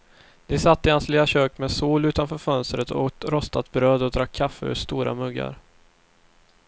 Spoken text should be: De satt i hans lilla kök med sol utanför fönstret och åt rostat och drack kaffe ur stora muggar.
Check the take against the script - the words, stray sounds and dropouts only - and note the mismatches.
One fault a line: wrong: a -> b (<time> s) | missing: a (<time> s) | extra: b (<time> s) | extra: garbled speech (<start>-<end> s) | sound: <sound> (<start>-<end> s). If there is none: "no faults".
extra: bröd (3.7 s)